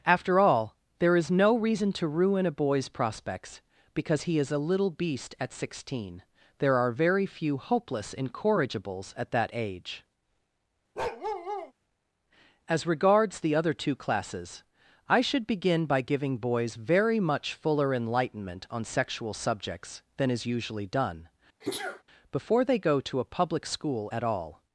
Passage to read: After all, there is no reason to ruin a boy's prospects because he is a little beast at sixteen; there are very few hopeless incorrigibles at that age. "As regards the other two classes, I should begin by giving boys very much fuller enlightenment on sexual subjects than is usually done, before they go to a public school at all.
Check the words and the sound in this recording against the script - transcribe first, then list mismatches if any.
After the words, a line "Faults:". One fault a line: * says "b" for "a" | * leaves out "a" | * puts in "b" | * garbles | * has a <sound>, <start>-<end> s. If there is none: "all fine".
After all, there is no reason to ruin a boy's prospects because he is a little beast at sixteen; there are very few hopeless incorrigibles at that age. "As regards the other two classes, I should begin by giving boys very much fuller enlightenment on sexual subjects than is usually done, before they go to a public school at all.
Faults:
* has a bark, 11.0-11.7 s
* has a sneeze, 21.6-22.0 s